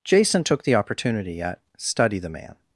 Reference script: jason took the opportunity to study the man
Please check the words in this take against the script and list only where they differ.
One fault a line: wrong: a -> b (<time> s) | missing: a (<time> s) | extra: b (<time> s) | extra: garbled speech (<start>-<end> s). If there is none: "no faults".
wrong: to -> at (1.4 s)